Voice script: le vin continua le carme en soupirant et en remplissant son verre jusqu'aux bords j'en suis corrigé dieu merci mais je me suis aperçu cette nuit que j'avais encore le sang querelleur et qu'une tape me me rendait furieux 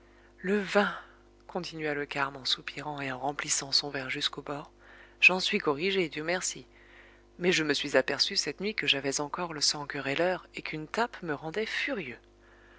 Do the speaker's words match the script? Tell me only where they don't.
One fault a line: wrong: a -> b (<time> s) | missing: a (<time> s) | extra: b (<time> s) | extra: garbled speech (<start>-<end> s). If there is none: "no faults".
missing: me (11.3 s)